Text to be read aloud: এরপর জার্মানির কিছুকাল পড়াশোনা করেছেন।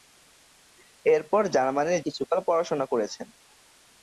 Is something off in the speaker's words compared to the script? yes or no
no